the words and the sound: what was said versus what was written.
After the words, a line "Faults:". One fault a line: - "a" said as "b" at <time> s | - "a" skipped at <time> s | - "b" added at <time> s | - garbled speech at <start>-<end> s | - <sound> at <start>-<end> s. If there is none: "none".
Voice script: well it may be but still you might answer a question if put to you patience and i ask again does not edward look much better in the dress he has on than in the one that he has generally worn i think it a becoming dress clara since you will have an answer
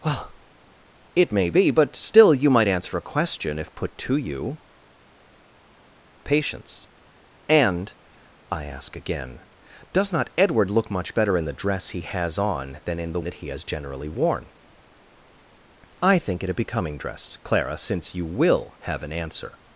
well it may be but still you might answer a question if put to you patience and i ask again does not edward look much better in the dress he has on than in the that he has generally worn i think it a becoming dress clara since you will have an answer
Faults:
- "one" skipped at 13.2 s